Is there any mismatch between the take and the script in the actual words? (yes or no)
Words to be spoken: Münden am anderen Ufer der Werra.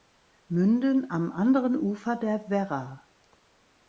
no